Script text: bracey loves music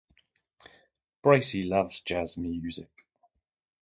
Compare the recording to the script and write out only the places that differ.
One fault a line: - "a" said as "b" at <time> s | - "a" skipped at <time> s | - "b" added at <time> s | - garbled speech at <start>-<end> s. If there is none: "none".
- "jazz" added at 2.0 s